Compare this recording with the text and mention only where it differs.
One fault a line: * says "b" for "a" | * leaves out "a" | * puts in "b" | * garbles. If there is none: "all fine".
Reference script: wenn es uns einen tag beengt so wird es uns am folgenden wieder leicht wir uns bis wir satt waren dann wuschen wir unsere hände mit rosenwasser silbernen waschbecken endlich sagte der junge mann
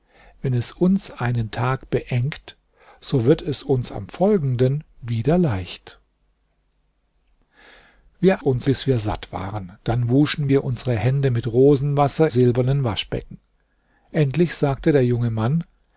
all fine